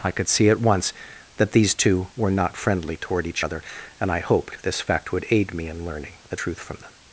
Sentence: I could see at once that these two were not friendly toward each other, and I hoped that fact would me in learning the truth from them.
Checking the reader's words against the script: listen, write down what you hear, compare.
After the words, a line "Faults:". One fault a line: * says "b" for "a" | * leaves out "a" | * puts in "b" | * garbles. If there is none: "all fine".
I could see at once that these two were not friendly toward each other, and I hoped this fact would aid me in learning the truth from them.
Faults:
* says "this" for "that"
* puts in "aid"